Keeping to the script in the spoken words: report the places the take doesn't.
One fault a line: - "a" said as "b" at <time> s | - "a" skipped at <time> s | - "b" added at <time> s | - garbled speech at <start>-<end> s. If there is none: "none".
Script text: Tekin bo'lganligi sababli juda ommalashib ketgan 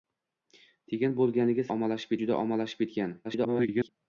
- "sababli" said as "ommalashib" at 1.7 s
- garbled speech at 3.2-3.9 s